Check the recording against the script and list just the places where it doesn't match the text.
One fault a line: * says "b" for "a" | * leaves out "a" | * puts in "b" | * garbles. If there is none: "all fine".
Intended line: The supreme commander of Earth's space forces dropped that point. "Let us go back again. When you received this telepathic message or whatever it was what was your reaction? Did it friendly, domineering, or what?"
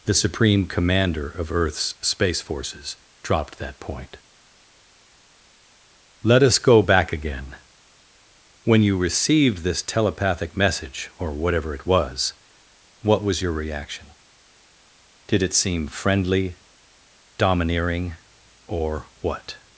* puts in "seem"